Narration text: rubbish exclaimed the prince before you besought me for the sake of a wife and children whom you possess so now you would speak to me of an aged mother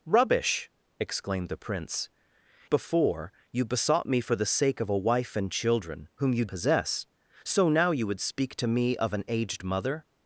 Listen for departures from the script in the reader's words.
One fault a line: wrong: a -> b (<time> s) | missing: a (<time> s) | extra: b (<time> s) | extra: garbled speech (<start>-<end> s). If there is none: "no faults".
no faults